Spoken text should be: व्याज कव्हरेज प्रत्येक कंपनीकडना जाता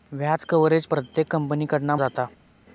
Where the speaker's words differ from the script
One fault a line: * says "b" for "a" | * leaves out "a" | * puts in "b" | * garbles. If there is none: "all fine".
all fine